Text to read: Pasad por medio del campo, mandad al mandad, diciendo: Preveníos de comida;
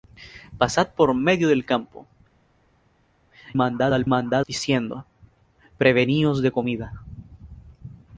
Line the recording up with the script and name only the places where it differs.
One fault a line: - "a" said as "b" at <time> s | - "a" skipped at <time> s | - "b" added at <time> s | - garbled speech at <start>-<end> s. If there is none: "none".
none